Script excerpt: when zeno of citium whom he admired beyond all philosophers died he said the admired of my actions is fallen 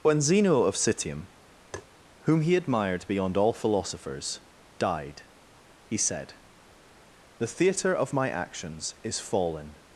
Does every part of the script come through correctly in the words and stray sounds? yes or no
no